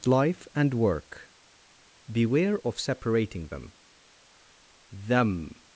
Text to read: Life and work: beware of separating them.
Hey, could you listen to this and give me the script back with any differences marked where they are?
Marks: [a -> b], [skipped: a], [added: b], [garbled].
Life and work: beware of separating them. [added: them]